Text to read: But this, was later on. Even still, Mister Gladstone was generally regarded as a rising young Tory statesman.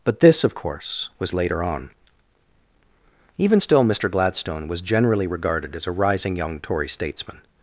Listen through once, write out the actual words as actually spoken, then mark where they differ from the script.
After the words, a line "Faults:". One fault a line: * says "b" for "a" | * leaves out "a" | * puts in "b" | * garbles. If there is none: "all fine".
But this, of course, was later on. Even still, Mister Gladstone was generally regarded as a rising young Tory statesman.
Faults:
* puts in "of course"